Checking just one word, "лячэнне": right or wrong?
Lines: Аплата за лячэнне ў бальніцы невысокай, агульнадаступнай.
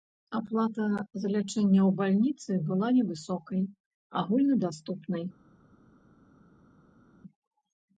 right